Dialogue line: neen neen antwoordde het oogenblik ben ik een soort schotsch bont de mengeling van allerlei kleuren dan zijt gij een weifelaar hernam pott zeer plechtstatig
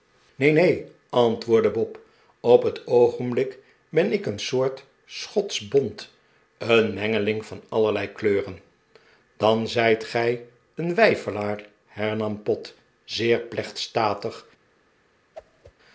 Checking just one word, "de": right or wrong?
wrong